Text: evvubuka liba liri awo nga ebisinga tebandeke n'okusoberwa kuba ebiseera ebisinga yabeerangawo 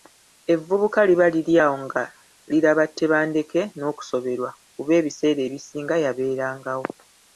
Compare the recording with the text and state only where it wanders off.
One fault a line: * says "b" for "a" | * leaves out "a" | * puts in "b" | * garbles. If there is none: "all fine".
* says "liraba" for "ebisinga"